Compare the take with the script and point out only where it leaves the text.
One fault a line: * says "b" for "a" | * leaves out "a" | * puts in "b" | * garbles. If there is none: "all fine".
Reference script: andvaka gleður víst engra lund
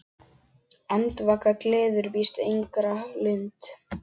all fine